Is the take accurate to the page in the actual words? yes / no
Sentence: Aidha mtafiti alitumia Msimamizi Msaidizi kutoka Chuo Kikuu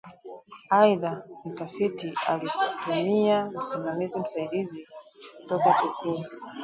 no